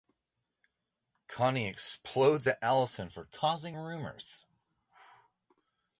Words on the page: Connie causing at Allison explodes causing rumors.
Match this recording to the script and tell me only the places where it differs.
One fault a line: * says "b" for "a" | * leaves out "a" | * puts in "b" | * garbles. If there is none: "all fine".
* says "explodes" for "causing"
* says "for" for "explodes"